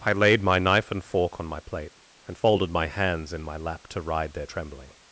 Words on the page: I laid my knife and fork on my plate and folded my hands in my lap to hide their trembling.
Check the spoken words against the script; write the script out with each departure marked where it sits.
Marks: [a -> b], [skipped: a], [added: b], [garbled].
I laid my knife and fork on my plate and folded my hands in my lap to [hide -> ride] their trembling.